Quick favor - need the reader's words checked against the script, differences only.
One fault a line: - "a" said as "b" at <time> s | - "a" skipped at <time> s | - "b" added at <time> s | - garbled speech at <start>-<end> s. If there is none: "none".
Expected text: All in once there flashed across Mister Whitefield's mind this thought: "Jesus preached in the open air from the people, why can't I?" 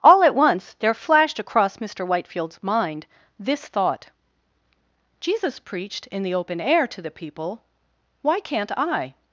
- "in" said as "at" at 0.2 s
- "from" said as "to" at 6.9 s